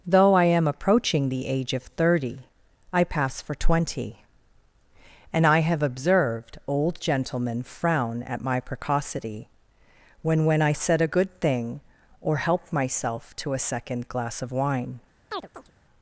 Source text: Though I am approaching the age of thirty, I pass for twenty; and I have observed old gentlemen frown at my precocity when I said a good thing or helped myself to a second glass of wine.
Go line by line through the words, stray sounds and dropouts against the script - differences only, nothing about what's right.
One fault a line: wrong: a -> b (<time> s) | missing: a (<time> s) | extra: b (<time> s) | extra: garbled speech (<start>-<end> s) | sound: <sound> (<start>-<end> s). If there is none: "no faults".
extra: when (10.4 s)
sound: chirp (15.3-15.7 s)